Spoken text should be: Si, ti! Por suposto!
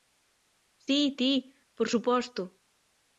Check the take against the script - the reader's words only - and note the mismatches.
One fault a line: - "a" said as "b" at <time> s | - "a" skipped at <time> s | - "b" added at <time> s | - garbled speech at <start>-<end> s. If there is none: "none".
none